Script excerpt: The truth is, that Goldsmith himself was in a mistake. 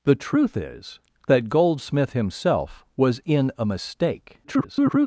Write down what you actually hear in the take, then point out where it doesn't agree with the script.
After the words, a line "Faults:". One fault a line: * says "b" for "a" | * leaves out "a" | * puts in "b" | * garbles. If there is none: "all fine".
The truth is, that Goldsmith himself was in a mistake. [garbled]
Faults:
* garbles